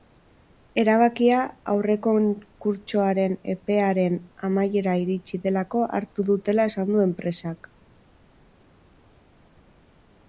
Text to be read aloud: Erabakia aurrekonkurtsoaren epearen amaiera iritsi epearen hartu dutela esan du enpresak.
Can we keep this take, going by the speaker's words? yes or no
no